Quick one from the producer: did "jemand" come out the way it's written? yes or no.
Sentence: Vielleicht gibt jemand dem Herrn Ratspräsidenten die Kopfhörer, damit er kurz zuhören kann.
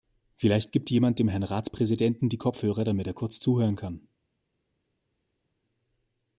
yes